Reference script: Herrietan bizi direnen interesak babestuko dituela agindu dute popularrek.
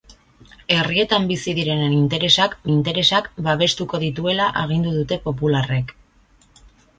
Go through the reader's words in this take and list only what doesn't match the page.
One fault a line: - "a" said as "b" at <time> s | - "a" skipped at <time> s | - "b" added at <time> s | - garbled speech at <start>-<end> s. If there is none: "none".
- "interesak" added at 2.7 s